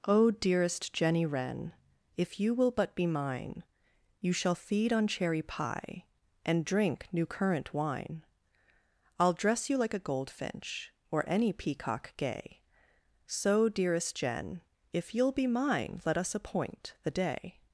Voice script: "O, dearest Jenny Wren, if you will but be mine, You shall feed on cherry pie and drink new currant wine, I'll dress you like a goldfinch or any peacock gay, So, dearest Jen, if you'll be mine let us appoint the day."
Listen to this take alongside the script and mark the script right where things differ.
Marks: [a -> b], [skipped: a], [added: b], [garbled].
"O, dearest Jenny Wren, if you will but be mine, You shall feed on cherry pie and drink new currant wine, I'll dress you like a goldfinch or any peacock gay, So, dearest Jen, if you'll be mine let us appoint the day."